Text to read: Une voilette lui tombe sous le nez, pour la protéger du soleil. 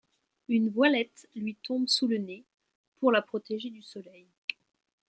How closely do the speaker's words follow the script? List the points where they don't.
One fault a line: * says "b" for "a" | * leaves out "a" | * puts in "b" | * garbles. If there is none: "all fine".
all fine